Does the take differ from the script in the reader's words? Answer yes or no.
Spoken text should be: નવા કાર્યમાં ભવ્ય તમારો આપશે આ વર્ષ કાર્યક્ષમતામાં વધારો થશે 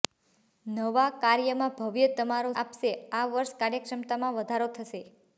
no